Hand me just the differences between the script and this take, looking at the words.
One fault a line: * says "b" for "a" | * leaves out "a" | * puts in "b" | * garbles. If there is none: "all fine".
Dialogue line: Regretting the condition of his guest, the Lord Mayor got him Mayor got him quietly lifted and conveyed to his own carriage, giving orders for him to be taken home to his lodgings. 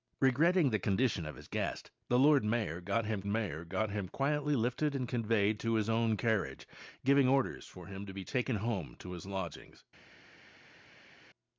all fine